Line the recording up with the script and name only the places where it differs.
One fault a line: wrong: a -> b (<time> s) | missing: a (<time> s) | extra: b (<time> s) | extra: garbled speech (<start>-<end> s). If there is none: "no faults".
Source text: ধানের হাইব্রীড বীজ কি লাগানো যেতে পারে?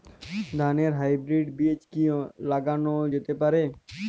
no faults